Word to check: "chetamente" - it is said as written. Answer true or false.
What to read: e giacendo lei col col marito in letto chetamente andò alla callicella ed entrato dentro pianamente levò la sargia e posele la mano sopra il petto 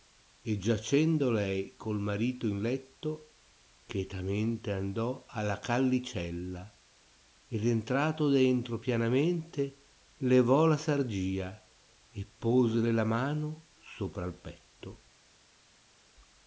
true